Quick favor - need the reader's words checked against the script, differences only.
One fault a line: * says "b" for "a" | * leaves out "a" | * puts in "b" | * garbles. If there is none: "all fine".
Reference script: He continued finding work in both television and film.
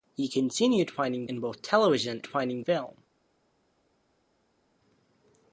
* leaves out "work"
* says "finding" for "and"